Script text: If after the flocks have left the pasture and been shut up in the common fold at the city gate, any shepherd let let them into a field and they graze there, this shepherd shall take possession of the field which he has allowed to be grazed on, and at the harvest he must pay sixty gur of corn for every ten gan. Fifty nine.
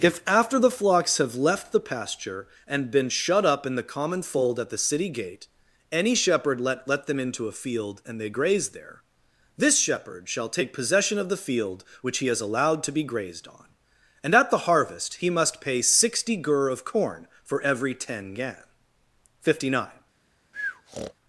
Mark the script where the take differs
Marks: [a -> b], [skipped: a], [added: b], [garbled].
If after the flocks have left the pasture and been shut up in the common fold at the city gate, any shepherd let let them into a field and they graze there, this shepherd shall take possession of the field which he has allowed to be grazed on, and at the harvest he must pay sixty gur of corn for every ten gan. Fifty nine.